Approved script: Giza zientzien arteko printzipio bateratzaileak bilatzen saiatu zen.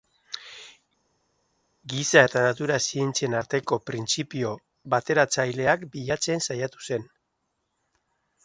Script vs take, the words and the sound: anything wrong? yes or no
yes